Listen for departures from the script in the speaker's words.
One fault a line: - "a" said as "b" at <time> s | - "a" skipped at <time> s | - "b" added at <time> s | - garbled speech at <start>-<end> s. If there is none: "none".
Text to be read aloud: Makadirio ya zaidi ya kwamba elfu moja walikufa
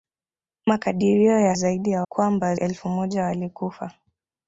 none